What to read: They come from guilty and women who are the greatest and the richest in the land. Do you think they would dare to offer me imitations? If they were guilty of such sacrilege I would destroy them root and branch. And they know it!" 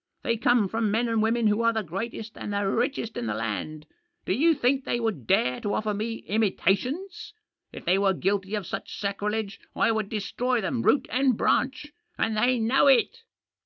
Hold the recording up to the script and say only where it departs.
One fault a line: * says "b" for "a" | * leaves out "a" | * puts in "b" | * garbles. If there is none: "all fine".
* says "men" for "guilty"